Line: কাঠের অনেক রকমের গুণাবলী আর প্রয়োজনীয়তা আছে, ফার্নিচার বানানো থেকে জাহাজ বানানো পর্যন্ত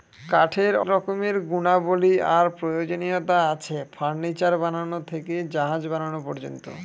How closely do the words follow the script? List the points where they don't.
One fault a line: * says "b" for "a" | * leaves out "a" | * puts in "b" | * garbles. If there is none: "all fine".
* leaves out "অনেক"